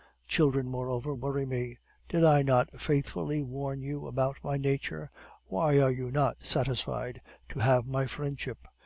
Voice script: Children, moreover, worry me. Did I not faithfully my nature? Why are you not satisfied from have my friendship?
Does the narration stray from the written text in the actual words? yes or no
yes